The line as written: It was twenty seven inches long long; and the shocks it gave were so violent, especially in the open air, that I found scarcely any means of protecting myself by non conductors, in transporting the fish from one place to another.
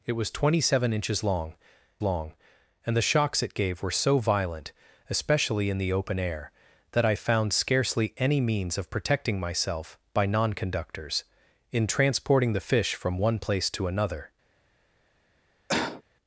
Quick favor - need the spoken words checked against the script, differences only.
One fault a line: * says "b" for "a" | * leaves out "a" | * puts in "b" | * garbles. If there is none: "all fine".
all fine